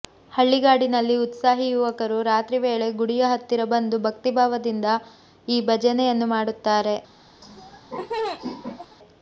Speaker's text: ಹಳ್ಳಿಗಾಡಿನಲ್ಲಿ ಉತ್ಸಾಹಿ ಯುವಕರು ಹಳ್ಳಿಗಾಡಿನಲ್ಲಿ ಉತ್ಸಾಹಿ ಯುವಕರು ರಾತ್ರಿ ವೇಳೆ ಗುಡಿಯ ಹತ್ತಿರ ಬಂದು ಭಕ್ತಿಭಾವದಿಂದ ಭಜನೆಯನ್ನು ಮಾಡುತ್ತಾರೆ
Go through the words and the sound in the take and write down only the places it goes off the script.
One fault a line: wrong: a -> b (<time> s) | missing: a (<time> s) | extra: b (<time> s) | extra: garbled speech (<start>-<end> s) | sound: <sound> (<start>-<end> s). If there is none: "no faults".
missing: ಹಳ್ಳಿಗಾಡಿನಲ್ಲಿ ಉತ್ಸಾಹಿ ಯುವಕರು (2.2 s)
extra: ಈ (5.5 s)
sound: laugh (7.4-9.0 s)